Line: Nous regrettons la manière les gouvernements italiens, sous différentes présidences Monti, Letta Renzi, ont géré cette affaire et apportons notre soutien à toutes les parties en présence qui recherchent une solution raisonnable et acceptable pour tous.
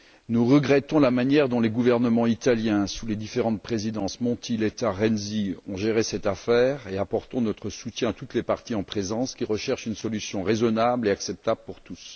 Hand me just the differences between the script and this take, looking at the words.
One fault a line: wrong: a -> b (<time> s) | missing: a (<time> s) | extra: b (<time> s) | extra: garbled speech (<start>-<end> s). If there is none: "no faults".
extra: dont (1.5 s)
extra: les (3.0 s)
extra: et (4.9 s)